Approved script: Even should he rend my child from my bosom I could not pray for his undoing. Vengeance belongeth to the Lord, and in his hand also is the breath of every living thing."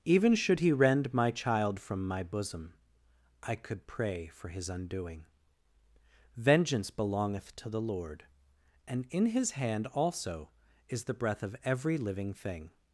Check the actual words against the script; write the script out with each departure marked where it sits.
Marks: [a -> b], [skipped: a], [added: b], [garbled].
Even should he rend my child from my bosom I could [skipped: not] pray for his undoing. Vengeance belongeth to the Lord, and in his hand also is the breath of every living thing."